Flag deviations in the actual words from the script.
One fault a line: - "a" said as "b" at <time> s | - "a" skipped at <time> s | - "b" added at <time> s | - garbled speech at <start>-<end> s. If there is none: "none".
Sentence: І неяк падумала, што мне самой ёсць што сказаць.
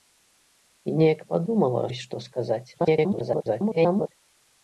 - "што мне самой" skipped at 1.8 s
- garbled speech at 2.7-4.1 s